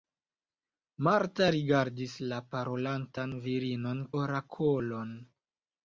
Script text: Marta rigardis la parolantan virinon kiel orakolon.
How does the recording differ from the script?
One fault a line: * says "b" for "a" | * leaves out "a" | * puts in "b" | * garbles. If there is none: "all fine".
* leaves out "kiel"